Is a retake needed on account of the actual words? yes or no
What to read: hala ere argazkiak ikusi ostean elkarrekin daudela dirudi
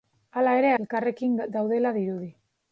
yes